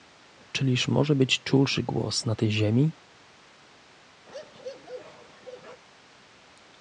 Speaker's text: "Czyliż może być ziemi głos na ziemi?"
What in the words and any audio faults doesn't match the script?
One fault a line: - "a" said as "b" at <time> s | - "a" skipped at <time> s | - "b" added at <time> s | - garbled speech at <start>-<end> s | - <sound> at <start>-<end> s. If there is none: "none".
- "ziemi" said as "czulszy" at 1.4 s
- "tej" added at 2.3 s
- bark at 4.3-5.8 s